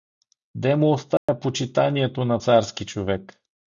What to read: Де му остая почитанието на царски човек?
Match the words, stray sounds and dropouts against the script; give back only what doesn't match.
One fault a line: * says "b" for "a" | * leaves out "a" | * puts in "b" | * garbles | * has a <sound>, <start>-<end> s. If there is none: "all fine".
* has a dropout, 1.2-1.3 s